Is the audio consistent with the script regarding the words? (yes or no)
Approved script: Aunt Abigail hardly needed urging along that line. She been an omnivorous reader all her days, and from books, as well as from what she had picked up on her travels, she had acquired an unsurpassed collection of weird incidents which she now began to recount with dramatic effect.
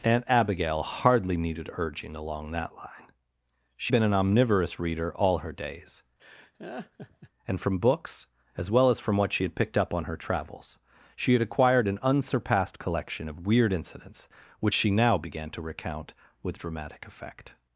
yes